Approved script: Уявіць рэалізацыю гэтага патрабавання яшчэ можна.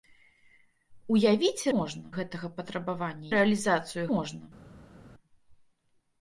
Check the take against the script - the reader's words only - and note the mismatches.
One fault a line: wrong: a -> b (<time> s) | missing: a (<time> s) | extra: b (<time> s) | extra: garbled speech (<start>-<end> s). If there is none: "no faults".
wrong: рэалізацыю -> можна (1.8 s)
wrong: яшчэ -> рэалізацыю (3.3 s)